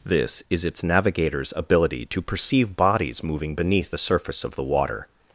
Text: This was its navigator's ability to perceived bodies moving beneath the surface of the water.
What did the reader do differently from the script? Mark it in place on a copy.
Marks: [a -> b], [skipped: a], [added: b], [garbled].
This [was -> is] its navigator's ability to [perceived -> perceive] bodies moving beneath the surface of the water.